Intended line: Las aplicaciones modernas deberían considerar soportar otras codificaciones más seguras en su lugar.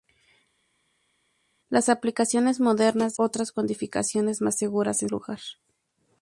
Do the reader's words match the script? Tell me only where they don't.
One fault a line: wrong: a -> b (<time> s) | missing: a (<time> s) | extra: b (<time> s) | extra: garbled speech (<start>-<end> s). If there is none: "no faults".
missing: deberían considerar soportar (3.1 s)
missing: su (5.1 s)